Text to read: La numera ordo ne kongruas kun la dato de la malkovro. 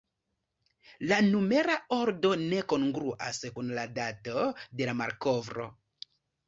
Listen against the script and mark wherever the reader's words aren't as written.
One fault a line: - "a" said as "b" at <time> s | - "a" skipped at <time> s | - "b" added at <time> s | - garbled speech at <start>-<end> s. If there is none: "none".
none